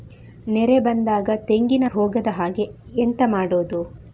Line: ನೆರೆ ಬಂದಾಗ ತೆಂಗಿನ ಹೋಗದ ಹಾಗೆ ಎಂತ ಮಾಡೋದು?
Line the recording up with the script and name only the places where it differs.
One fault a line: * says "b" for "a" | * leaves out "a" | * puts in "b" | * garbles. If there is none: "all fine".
all fine